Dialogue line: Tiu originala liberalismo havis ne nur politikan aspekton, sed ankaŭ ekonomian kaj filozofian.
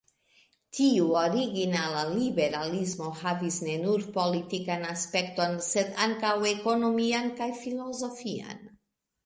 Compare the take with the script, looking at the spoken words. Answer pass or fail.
pass